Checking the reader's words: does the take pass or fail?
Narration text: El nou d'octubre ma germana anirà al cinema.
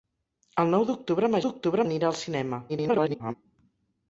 fail